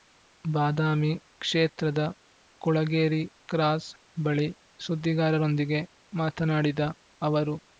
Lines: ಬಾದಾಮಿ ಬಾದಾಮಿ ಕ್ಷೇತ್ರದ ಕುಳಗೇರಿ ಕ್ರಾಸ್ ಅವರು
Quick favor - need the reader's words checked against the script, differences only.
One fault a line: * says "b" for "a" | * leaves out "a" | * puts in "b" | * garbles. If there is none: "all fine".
* leaves out "ಬಾದಾಮಿ"
* puts in "ಬಳಿ ಸುದ್ದಿಗಾರರೊಂದಿಗೆ ಮಾತನಾಡಿದ"